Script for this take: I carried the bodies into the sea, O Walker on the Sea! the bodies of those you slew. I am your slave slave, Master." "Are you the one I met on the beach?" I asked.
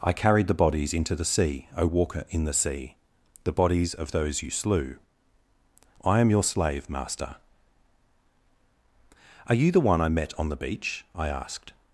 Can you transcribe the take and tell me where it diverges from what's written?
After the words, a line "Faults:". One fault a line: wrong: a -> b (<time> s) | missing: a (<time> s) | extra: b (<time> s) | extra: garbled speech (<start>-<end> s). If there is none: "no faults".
I carried the bodies into the sea, O Walker in the Sea! the bodies of those you slew. I am your slave, Master." "Are you the one I met on the beach?" I asked.
Faults:
wrong: on -> in (2.3 s)
missing: slave (6.9 s)